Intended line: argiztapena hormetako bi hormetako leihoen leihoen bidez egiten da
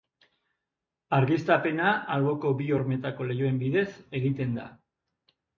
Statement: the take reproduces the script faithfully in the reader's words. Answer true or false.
false